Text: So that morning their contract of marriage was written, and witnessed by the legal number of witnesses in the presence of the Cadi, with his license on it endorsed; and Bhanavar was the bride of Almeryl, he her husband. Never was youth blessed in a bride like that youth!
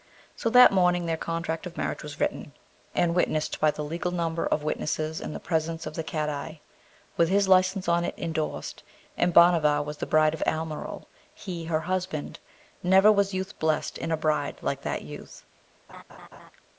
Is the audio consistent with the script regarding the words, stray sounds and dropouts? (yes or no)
no